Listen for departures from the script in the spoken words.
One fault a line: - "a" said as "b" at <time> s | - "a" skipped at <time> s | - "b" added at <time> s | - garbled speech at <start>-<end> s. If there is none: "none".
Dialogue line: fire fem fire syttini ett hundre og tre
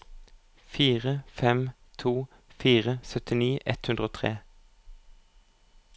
- "to" added at 2.0 s